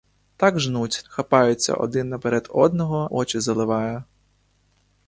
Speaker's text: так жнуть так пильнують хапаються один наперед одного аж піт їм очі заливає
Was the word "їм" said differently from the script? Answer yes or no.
yes